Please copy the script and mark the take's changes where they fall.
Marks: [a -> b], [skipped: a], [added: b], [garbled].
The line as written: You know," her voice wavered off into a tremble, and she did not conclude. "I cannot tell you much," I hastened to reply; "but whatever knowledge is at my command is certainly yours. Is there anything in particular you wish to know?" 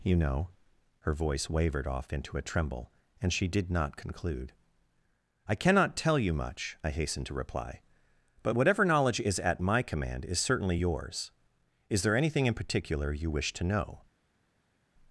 You know," her voice wavered off into a tremble, and she did not conclude. "I cannot tell you much," I hastened to reply; "but whatever knowledge is at my command is certainly yours. Is there anything in particular you wish to know?"